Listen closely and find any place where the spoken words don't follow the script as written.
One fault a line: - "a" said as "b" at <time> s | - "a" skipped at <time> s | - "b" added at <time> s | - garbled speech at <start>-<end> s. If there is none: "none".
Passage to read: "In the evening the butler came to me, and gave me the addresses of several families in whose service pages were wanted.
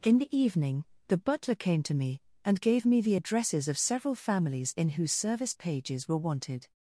none